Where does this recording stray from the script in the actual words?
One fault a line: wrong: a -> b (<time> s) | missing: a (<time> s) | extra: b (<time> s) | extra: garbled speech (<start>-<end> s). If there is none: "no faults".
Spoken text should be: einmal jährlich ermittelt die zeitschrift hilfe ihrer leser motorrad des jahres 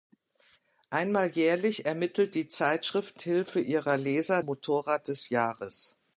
no faults